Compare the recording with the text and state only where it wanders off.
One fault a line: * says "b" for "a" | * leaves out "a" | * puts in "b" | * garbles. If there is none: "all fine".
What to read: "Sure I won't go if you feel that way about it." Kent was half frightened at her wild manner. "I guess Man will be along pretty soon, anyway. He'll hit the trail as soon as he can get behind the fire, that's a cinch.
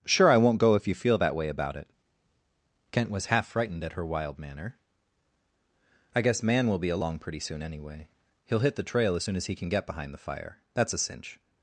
all fine